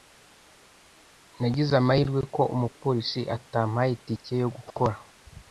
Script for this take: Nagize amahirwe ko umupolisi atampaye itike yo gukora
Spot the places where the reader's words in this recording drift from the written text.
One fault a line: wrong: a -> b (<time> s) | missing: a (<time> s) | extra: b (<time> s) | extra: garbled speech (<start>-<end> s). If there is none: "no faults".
no faults